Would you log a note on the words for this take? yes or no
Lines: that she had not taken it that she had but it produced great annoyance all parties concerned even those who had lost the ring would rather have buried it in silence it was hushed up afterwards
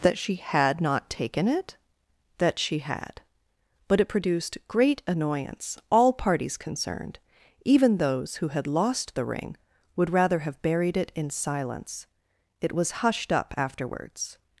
no